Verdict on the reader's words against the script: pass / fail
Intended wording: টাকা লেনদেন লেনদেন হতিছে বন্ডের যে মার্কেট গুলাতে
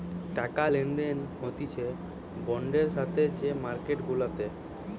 fail